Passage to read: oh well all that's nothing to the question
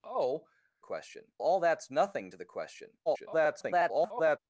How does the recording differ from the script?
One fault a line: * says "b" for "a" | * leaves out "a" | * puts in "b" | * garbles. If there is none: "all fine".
* says "question" for "well"
* garbles